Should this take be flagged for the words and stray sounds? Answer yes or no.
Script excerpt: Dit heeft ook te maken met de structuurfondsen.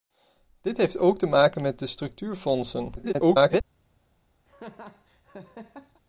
yes